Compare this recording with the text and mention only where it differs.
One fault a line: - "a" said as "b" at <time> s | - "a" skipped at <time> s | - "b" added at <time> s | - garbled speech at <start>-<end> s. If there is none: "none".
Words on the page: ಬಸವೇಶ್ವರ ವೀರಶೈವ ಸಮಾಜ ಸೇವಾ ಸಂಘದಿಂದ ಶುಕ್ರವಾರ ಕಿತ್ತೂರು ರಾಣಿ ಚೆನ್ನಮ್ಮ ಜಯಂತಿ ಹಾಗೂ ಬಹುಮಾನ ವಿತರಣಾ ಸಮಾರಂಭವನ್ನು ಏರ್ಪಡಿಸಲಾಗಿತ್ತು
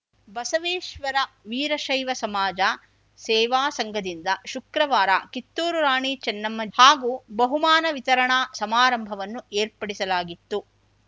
- "ಜಯಂತಿ" skipped at 6.6 s